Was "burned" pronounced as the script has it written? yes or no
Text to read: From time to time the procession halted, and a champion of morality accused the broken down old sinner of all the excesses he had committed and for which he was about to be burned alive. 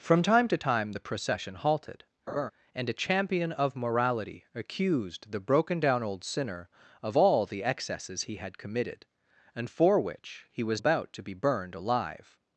yes